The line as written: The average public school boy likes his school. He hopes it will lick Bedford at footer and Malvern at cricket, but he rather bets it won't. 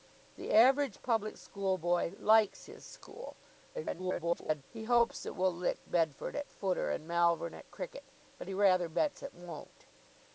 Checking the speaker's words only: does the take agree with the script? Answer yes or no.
no